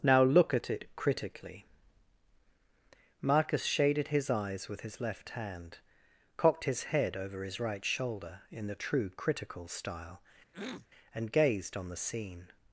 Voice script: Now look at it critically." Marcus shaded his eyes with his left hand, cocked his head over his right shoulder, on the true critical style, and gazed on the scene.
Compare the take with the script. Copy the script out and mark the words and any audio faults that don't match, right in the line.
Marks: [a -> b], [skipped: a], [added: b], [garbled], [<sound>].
Now look at it critically." Marcus shaded his eyes with his left hand, cocked his head over his right shoulder, [on -> in] the true critical style, [throat clearing] and gazed on the scene.